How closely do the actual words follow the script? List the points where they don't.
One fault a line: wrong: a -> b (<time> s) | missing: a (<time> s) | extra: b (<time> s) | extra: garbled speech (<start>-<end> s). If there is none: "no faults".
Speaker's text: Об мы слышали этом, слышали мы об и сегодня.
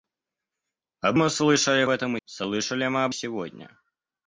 no faults